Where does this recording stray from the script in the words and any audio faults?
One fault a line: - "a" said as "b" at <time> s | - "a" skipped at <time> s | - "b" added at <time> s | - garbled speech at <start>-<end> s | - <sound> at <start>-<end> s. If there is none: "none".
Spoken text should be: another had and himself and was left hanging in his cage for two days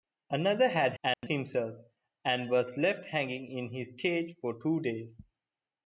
- dropout at 1.1-1.2 s